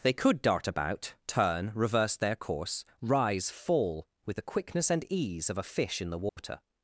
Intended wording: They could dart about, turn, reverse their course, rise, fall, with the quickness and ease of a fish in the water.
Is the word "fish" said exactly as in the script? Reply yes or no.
yes